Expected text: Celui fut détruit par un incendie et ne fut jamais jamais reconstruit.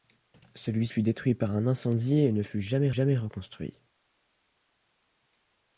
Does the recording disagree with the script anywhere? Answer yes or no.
no